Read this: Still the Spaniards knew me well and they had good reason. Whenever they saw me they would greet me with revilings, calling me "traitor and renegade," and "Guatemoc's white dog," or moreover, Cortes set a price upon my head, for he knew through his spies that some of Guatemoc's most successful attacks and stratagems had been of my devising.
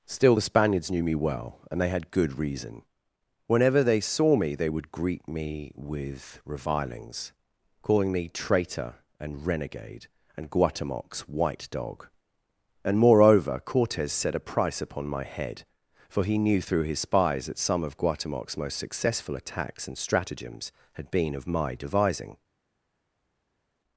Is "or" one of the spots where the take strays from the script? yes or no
yes